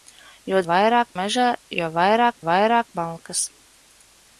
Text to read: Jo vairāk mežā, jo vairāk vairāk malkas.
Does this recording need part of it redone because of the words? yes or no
no